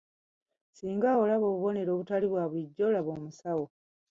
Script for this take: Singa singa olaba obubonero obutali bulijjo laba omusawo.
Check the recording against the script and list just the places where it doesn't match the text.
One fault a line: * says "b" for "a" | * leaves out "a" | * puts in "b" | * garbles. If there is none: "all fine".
* leaves out "singa"
* puts in "bwa"